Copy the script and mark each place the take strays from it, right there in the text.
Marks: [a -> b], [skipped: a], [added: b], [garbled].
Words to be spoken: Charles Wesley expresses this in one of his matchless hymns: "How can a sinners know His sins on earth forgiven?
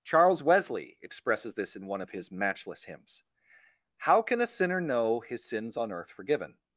Charles Wesley expresses this in one of his matchless hymns: "How can a [sinners -> sinner] know His sins on earth forgiven?